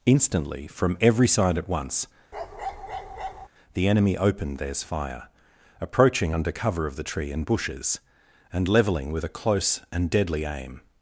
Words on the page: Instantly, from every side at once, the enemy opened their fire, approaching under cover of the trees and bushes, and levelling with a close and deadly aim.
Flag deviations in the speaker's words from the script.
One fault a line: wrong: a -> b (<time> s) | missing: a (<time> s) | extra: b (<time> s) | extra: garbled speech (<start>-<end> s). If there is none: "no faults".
wrong: their -> theirs (4.6 s)
wrong: trees -> tree (7.0 s)